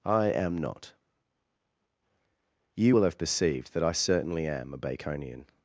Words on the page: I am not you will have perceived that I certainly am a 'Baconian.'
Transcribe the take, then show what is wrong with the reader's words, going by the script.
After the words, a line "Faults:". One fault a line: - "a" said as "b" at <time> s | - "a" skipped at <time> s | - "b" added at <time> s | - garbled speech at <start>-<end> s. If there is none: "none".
I am not you will have perceived that I certainly am a 'Baconian.'
Faults:
none